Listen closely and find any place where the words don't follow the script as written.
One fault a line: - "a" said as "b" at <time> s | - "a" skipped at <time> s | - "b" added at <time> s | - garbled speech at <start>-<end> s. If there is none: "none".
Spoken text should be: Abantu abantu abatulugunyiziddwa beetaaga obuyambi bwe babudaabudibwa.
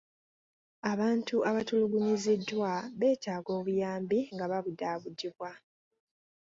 - "abantu" skipped at 1.4 s
- "bwe" said as "nga" at 4.3 s